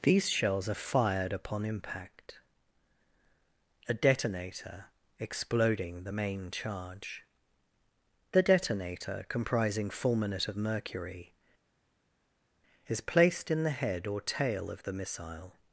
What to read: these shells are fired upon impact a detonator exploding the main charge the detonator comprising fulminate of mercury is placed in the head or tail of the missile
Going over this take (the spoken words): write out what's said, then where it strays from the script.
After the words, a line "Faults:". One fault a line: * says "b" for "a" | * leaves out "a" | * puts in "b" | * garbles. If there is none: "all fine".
these shells are fired upon impact a detonator exploding the main charge the detonator comprising fulminate of mercury is placed in the head or tail of the missile
Faults:
all fine